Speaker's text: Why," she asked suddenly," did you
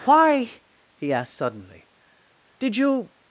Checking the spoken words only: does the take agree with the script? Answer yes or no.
no